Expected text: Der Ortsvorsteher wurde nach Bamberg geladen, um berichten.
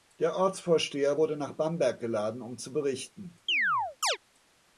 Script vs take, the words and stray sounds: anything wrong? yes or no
yes